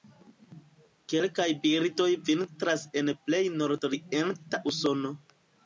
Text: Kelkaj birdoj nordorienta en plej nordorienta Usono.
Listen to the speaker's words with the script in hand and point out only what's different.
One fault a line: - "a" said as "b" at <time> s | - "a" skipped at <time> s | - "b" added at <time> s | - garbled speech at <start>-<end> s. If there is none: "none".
- "nordorienta" said as "vintras" at 2.3 s